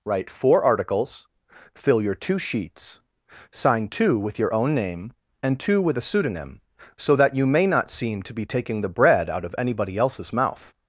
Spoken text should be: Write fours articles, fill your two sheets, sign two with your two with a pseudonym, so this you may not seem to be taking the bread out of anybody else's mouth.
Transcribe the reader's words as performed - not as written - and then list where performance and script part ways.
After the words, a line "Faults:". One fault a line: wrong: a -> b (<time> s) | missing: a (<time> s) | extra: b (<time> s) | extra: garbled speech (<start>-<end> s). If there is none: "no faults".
Write four articles, fill your two sheets, sign two with your own name, and two with a pseudonym, so that you may not seem to be taking the bread out of anybody else's mouth.
Faults:
wrong: fours -> four (0.3 s)
extra: own name and (4.5 s)
wrong: this -> that (7.2 s)